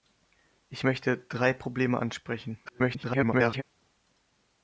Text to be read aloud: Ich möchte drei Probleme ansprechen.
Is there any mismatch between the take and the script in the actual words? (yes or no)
yes